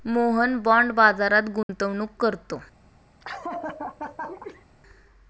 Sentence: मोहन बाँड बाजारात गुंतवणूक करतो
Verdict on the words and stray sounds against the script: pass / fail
fail